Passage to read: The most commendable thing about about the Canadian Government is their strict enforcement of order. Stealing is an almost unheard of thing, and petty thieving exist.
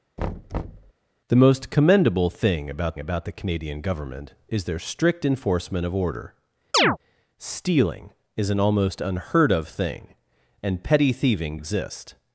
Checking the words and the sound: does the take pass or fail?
fail